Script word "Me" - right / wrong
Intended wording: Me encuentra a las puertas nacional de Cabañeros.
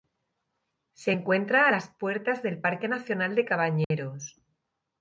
wrong